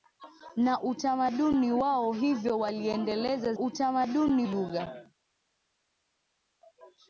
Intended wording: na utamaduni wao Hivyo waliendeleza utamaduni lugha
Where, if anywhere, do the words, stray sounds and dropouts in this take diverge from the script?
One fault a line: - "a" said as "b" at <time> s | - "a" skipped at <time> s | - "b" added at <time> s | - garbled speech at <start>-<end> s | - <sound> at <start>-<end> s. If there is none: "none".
none